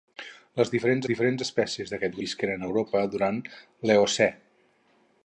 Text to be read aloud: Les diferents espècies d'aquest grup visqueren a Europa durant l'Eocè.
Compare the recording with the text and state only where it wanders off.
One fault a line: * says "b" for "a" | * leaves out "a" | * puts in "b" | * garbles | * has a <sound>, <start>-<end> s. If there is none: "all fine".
* puts in "diferents"
* leaves out "grup"